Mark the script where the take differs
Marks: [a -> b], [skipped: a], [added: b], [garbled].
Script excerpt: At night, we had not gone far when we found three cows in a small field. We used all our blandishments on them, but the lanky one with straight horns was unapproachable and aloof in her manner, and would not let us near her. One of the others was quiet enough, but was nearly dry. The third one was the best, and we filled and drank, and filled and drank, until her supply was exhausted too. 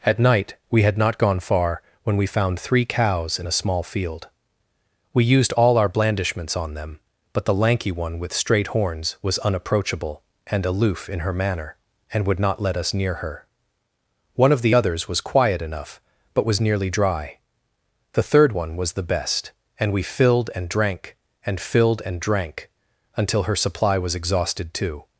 At night, we had not gone far when we found three cows in a small field. We used all our blandishments on them, but the lanky one with straight horns was unapproachable and aloof in her manner, and would not let us near her. One of the others was quiet enough, but was nearly dry. The third one was the best, and we filled and drank, and filled and drank, until her supply was exhausted too.